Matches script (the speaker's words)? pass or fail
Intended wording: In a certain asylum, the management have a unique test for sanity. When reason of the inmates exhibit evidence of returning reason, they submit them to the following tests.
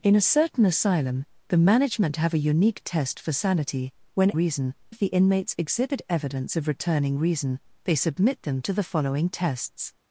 pass